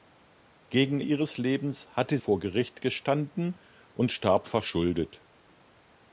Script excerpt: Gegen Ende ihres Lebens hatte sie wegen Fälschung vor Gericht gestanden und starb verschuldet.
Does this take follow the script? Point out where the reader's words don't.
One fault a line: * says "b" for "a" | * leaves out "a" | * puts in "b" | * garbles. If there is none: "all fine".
* leaves out "Ende"
* leaves out "sie wegen Fälschung"